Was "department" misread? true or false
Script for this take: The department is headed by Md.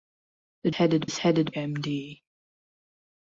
true